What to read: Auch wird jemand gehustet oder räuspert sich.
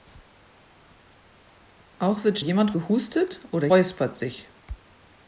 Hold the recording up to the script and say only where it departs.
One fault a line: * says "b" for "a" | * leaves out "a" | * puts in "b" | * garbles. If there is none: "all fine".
all fine